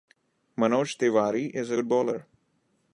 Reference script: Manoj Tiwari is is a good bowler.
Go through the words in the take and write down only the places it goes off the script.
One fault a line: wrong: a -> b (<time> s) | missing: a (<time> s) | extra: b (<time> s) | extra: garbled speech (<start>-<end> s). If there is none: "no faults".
missing: is (1.7 s)